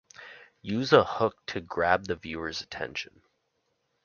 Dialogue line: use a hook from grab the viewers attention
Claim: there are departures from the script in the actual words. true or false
true